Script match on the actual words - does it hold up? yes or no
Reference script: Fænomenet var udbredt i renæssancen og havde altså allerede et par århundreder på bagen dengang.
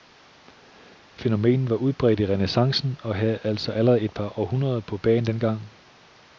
yes